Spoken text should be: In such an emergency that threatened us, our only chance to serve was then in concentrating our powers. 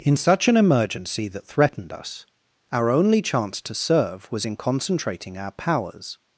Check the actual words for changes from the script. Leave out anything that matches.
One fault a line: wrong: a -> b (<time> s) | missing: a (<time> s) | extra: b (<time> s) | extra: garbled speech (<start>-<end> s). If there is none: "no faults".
missing: then (4.5 s)